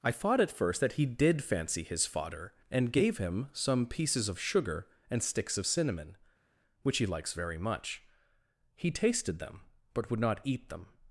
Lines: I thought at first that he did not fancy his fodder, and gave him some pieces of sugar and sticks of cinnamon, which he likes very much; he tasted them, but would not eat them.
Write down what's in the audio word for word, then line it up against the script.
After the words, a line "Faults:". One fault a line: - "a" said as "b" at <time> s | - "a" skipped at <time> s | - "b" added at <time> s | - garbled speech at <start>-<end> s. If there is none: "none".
I thought at first that he did fancy his fodder, and gave him some pieces of sugar and sticks of cinnamon, which he likes very much; he tasted them, but would not eat them.
Faults:
- "not" skipped at 1.4 s